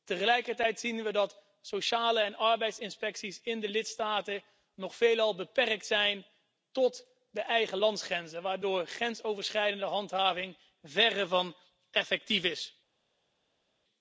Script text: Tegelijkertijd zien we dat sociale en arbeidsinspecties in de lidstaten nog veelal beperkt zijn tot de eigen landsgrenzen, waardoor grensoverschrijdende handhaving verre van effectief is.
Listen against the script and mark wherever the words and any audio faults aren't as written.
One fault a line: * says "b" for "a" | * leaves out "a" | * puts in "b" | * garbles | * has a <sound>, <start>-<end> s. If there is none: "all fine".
all fine